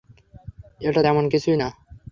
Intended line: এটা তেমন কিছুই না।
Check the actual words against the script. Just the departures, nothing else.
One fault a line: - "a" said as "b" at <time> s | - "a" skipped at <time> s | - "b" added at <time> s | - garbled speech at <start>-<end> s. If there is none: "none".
none